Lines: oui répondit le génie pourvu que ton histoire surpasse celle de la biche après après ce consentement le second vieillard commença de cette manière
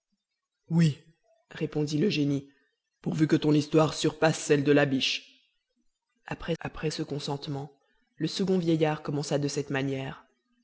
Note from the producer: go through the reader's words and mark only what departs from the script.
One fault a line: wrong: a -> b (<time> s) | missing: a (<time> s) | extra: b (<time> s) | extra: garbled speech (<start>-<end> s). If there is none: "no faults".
no faults